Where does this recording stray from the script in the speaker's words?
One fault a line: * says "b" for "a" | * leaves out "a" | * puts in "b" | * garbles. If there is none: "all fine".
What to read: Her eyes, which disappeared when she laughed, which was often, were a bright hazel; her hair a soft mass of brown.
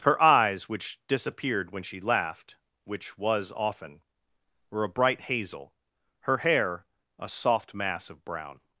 all fine